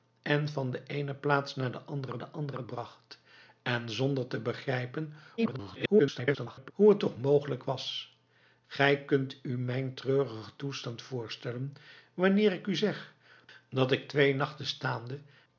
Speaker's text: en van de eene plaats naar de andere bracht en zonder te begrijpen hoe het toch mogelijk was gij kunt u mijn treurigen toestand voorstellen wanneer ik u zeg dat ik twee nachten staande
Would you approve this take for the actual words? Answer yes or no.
no